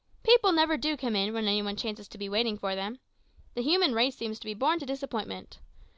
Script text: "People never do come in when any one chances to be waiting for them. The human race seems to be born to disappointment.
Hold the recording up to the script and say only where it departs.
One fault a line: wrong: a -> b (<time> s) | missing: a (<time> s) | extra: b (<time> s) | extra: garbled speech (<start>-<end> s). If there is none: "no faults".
no faults